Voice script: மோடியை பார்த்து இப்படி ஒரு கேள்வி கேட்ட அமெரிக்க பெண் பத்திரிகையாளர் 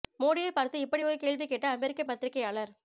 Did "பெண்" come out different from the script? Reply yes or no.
yes